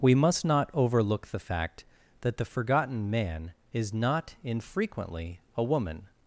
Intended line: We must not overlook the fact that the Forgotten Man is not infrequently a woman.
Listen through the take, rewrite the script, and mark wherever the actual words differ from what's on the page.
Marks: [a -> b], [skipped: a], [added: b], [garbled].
We must not overlook the fact that the Forgotten Man is not infrequently a woman.